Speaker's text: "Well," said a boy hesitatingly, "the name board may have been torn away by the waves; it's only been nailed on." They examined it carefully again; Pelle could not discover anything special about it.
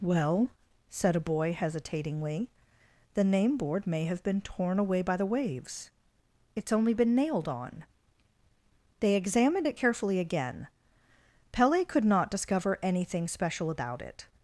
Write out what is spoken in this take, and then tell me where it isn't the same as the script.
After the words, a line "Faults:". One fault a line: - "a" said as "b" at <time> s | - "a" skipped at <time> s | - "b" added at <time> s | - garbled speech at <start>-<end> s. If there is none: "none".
"Well," said a boy hesitatingly, "the name board may have been torn away by the waves; it's only been nailed on." They examined it carefully again; Pelle could not discover anything special about it.
Faults:
none